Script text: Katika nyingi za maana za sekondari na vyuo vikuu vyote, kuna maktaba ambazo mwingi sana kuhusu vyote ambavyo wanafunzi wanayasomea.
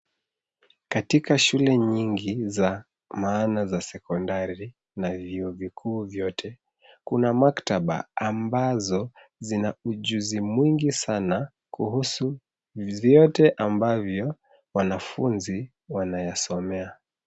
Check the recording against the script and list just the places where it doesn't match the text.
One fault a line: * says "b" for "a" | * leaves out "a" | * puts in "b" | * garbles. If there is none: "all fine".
* puts in "shule"
* puts in "zina ujuzi"